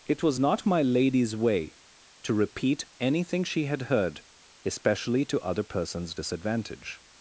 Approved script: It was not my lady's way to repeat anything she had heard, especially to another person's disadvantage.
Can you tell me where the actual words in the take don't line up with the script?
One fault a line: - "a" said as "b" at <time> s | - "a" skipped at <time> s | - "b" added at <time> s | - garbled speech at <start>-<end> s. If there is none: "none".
- "another" said as "other" at 5.4 s